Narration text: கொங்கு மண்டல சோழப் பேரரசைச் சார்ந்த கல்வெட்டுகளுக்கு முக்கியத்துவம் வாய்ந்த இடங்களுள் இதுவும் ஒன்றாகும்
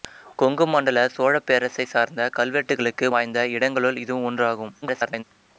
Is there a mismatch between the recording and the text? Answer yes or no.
yes